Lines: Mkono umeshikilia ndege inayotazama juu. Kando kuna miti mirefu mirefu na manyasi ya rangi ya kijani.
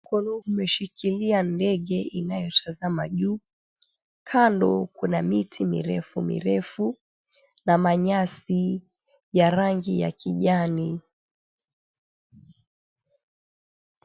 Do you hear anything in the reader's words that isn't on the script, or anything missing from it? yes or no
no